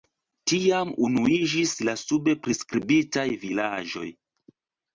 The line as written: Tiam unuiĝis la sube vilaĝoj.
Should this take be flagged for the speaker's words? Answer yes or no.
yes